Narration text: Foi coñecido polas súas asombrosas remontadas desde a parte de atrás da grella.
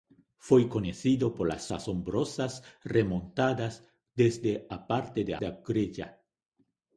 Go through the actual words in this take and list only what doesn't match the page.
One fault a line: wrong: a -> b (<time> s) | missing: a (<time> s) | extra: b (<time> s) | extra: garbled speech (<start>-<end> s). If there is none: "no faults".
missing: súas (1.6 s)
missing: atrás (5.3 s)